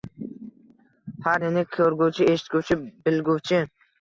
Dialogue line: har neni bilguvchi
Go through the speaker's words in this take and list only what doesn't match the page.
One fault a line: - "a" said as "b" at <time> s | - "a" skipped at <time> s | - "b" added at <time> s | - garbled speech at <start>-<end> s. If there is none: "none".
- "ko'rguvchi eshitguvchi" added at 1.7 s